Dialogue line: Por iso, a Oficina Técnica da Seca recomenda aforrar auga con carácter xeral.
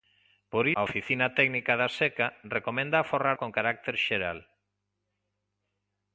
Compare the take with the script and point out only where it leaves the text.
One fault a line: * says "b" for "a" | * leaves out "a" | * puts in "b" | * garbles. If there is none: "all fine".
* leaves out "iso"
* leaves out "auga"